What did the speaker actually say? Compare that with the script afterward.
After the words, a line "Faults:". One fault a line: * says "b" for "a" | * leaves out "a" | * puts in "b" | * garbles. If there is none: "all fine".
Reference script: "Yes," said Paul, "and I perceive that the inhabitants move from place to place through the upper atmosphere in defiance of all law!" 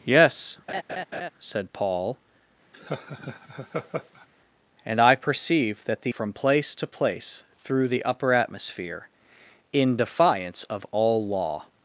"Yes," said Paul, "and I perceive that the from place to place through the upper atmosphere in defiance of all law!"
Faults:
* leaves out "inhabitants move"